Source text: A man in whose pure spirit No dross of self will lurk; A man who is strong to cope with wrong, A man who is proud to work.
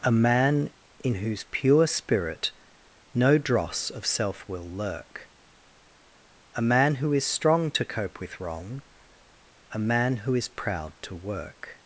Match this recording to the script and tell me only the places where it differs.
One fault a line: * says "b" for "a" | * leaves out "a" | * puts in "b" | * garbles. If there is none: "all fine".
all fine